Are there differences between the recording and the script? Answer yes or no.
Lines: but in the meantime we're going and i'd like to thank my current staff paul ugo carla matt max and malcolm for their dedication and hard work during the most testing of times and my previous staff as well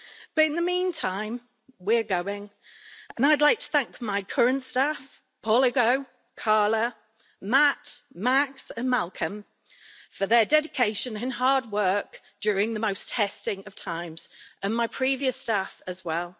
no